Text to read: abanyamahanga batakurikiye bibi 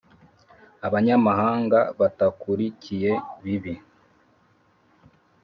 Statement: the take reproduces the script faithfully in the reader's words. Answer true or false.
true